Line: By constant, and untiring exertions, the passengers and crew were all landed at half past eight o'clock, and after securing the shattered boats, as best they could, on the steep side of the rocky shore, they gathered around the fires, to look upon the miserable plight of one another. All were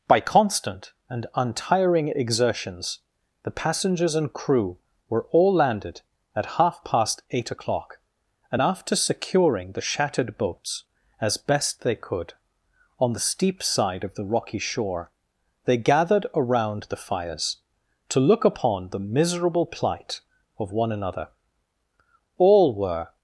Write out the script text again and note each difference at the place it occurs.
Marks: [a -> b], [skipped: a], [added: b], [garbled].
By constant, and untiring exertions, the passengers and crew were all landed at half past eight o'clock, and after securing the shattered boats, as best they could, on the steep side of the rocky shore, they gathered around the fires, to look upon the miserable plight of one another. All were